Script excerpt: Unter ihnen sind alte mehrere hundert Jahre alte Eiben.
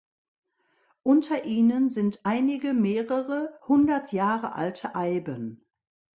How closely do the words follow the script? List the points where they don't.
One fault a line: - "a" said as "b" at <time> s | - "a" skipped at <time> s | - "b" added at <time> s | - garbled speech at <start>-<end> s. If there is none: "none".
- "alte" said as "einige" at 2.2 s